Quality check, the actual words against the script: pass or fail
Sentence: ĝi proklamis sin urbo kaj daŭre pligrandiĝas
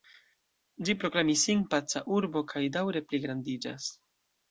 fail